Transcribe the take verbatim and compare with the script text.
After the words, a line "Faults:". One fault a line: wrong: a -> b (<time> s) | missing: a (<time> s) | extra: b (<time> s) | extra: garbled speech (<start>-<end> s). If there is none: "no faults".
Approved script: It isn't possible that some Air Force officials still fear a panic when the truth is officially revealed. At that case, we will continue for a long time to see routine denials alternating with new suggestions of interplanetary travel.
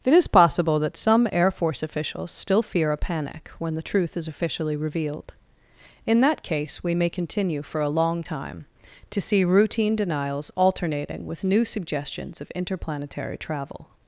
It is possible that some Air Force officials still fear a panic when the truth is officially revealed. In that case, we may continue for a long time to see routine denials alternating with new suggestions of interplanetary travel.
Faults:
wrong: isn't -> is (0.1 s)
wrong: At -> In (6.1 s)
wrong: will -> may (7.0 s)